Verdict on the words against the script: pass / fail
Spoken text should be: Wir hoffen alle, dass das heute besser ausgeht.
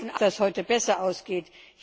fail